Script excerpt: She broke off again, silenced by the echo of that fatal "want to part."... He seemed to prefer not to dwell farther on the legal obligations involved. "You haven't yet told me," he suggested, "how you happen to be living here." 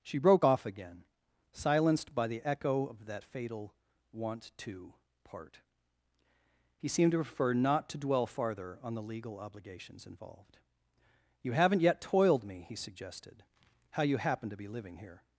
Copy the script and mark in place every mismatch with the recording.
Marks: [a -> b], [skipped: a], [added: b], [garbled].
She broke off again, silenced by the echo of that fatal "want to part."... He seemed to prefer not to dwell farther on the legal obligations involved. "You haven't yet [told -> toiled] me," he suggested, "how you happen to be living here."